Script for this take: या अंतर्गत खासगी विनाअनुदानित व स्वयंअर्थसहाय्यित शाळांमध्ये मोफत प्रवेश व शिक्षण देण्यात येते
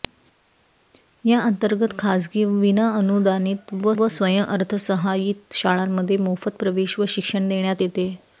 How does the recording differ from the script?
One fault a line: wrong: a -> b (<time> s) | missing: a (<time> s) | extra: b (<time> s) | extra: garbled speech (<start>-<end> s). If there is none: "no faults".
extra: व (4.0 s)